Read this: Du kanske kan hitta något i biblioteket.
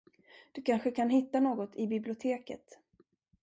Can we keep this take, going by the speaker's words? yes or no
yes